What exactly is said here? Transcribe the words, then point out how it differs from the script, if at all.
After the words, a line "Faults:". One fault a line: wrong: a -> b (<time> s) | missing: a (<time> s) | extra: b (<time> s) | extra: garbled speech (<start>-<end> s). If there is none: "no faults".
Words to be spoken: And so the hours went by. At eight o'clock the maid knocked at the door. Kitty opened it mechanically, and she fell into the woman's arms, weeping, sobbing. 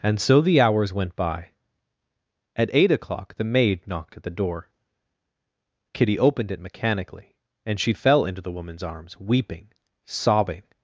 And so the hours went by. At eight o'clock the maid knocked at the door. Kitty opened it mechanically, and she fell into the woman's arms, weeping, sobbing.
Faults:
no faults